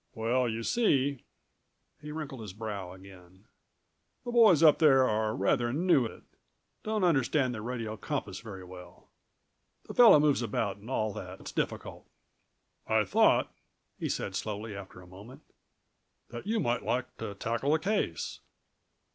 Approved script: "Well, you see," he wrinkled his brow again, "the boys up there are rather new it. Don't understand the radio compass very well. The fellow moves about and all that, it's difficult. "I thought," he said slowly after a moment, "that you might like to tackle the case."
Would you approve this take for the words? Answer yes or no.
yes